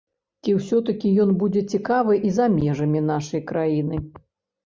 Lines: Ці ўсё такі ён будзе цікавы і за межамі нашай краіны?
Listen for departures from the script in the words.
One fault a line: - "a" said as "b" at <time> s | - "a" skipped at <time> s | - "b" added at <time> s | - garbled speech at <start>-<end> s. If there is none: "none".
none